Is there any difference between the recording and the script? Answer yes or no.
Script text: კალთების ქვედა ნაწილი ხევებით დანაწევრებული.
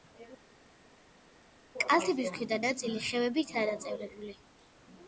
no